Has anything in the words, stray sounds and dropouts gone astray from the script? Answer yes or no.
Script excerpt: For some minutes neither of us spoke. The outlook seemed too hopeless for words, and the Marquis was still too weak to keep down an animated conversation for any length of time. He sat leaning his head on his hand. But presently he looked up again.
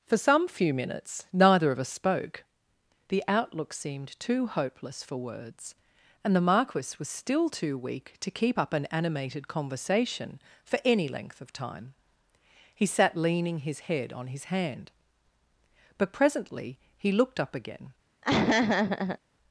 yes